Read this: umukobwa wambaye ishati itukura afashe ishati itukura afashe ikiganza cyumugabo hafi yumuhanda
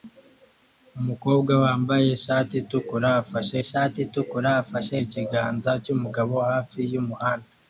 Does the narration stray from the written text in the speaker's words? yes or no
no